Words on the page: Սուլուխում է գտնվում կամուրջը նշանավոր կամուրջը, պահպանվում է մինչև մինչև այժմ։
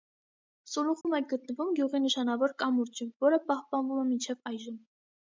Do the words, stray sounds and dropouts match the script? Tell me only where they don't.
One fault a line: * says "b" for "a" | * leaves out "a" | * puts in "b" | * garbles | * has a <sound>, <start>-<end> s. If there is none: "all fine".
* has a dropout, 1.0-1.0 s
* says "գյուղի" for "կամուրջը"
* puts in "որը"
* leaves out "մինչև"